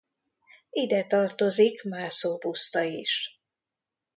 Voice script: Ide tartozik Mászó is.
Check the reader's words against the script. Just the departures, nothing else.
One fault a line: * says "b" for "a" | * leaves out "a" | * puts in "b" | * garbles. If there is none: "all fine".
* puts in "puszta"